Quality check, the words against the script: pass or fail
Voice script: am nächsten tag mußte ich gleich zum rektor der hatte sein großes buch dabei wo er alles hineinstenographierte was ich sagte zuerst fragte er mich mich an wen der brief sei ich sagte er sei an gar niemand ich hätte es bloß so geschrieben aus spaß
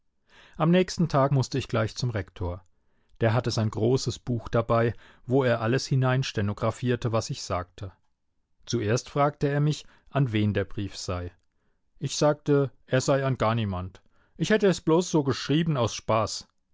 fail